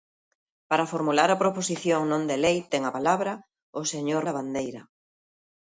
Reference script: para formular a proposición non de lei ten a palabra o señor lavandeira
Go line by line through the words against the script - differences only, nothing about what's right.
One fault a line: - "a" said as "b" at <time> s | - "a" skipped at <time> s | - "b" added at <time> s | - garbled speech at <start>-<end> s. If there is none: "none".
none